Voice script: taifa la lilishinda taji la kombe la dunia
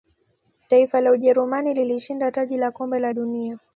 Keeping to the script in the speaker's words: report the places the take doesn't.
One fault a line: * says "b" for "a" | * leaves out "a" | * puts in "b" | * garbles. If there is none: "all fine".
* puts in "ujerumani"